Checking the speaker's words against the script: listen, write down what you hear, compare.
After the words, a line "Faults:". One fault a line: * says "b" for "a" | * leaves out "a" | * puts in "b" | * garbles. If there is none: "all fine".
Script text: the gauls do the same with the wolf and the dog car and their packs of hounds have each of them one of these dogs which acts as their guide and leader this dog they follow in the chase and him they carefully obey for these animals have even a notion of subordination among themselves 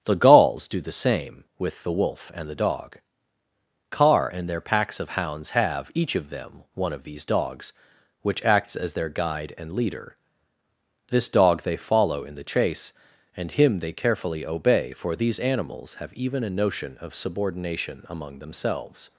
the gauls do the same with the wolf and the dog car and their packs of hounds have each of them one of these dogs which acts as their guide and leader this dog they follow in the chase and him they carefully obey for these animals have even a notion of subordination among themselves
Faults:
all fine